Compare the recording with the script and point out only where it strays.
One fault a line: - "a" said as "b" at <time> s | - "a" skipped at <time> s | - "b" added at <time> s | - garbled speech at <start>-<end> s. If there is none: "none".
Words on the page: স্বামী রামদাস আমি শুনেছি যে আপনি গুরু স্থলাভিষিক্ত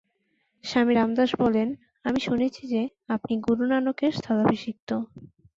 - "বলেন" added at 1.4 s
- "নানকের" added at 3.7 s